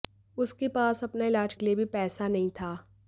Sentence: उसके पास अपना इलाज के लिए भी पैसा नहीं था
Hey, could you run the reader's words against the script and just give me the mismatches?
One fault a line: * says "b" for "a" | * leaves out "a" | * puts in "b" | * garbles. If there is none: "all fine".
all fine